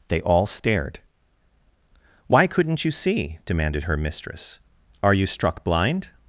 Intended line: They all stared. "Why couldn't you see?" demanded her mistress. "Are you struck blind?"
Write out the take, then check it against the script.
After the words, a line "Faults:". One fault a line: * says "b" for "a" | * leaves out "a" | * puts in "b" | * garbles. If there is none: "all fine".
They all stared. "Why couldn't you see?" demanded her mistress. "Are you struck blind?"
Faults:
all fine